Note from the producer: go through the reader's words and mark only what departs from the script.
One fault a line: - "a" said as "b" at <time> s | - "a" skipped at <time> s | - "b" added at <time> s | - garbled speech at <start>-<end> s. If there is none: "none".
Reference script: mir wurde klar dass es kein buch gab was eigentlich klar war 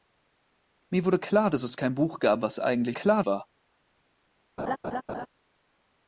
none